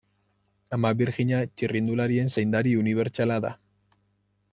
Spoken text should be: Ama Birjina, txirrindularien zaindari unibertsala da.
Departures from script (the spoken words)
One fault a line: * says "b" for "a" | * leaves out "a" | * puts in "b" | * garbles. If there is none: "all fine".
all fine